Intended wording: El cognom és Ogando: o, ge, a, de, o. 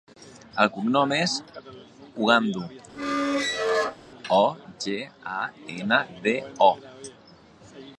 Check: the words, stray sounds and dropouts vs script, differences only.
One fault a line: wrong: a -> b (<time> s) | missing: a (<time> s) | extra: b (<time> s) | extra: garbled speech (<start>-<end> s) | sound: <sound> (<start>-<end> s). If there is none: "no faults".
sound: squeak (2.9-4.0 s)
extra: ena (5.8 s)